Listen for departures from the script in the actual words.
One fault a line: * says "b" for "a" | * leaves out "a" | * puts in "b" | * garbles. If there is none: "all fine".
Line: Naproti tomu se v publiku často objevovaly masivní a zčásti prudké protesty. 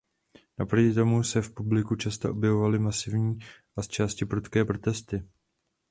all fine